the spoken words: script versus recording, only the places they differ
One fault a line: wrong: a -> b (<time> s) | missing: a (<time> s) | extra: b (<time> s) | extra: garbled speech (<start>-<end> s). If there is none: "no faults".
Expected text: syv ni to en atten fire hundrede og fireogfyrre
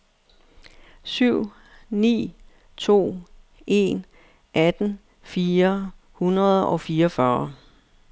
no faults